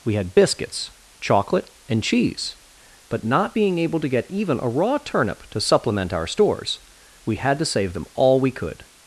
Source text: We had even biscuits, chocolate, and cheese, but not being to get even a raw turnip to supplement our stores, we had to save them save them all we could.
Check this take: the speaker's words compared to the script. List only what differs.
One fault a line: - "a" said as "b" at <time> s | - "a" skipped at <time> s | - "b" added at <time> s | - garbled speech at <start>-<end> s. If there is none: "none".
- "even" skipped at 0.3 s
- "able" added at 3.8 s
- "save them" skipped at 8.1 s